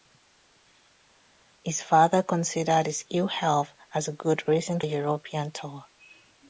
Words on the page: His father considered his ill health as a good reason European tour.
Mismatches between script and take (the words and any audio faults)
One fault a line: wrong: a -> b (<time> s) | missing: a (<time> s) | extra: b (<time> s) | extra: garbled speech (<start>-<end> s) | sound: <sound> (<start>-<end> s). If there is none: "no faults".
no faults